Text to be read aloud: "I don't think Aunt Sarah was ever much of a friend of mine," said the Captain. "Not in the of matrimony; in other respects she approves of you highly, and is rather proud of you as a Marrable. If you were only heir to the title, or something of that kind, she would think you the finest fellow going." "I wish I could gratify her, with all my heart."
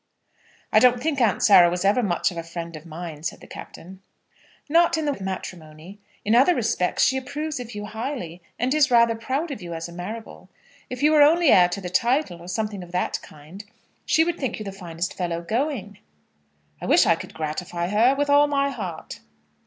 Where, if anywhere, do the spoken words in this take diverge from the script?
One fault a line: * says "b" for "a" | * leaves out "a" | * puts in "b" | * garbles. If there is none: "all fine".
all fine